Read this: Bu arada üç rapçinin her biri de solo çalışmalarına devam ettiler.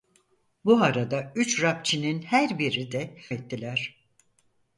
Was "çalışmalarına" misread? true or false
true